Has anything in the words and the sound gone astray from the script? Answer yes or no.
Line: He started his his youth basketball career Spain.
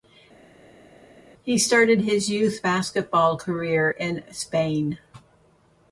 yes